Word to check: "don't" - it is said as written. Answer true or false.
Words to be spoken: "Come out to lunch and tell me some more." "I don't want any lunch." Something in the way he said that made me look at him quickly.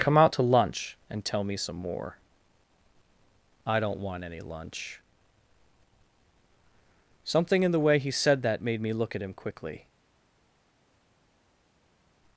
true